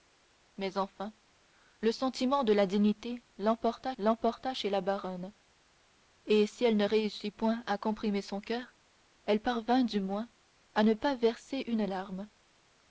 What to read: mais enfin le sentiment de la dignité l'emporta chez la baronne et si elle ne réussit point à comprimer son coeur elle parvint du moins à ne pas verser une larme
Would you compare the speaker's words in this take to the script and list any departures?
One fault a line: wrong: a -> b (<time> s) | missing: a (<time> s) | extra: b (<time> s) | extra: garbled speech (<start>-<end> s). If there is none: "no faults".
extra: l'emporta (4.0 s)